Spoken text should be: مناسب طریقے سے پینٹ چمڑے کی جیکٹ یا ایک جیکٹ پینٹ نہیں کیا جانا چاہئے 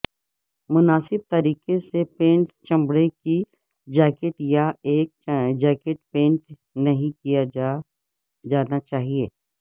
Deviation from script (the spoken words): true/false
false